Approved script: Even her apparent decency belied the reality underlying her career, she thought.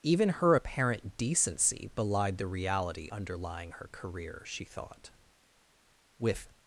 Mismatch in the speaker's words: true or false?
true